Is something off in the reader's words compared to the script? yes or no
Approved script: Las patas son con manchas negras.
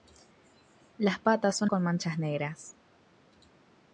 no